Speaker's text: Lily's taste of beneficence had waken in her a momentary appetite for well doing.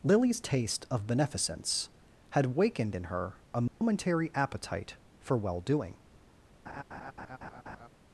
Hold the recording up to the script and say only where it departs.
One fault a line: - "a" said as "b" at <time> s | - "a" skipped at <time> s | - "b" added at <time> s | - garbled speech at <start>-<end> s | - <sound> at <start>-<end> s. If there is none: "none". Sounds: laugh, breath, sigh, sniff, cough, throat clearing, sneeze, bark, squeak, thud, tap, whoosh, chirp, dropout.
- "waken" said as "wakened" at 2.5 s
- dropout at 3.7-3.8 s
- laugh at 6.7-7.9 s